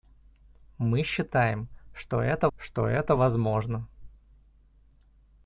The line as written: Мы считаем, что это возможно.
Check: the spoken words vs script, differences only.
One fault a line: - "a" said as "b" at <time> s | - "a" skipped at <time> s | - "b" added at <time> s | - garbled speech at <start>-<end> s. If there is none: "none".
- "что это" added at 2.6 s